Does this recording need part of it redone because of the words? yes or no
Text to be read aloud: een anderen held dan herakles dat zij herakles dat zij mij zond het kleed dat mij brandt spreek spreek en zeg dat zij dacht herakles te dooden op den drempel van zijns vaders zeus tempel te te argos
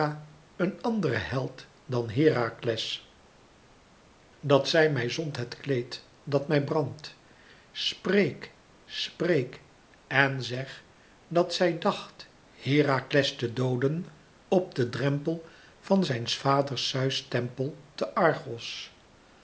yes